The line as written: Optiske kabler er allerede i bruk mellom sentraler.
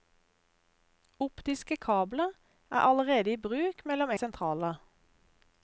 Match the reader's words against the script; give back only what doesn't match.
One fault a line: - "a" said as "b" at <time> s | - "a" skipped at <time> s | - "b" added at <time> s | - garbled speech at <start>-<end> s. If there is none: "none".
none